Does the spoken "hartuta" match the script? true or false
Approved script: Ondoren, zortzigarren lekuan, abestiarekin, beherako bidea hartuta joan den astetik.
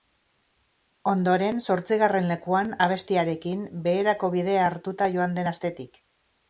true